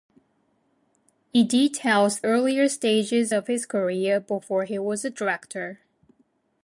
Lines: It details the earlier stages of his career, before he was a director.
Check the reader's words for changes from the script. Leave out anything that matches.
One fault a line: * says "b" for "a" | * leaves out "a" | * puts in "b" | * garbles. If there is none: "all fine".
* leaves out "the"